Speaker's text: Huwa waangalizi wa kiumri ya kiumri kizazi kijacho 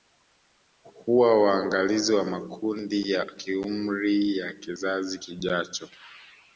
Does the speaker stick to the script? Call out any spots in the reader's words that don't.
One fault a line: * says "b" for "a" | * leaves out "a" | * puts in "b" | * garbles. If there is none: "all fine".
* says "makundi" for "kiumri"
* puts in "ya"